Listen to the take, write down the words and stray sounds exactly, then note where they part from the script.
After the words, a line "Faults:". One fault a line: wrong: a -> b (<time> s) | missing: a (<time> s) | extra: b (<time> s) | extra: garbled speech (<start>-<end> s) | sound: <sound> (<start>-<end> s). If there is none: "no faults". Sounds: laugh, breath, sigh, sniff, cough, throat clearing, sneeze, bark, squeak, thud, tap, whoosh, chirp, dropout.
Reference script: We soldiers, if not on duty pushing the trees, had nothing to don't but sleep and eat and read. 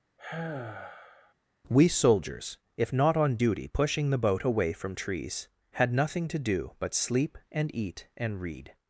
We soldiers, if not on duty pushing the boat away from trees, had nothing to do but sleep and eat and read.
Faults:
sound: sigh (0.2-1.3 s)
extra: boat away from (4.2 s)
wrong: don't -> do (6.4 s)